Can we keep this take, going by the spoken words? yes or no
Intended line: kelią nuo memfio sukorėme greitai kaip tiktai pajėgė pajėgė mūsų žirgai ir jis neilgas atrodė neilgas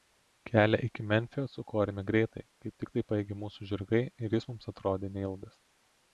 no